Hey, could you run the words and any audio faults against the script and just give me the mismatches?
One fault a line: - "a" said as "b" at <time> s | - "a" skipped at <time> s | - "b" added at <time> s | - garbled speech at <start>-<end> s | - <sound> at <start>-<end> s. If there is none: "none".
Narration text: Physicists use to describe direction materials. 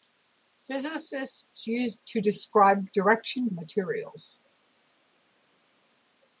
none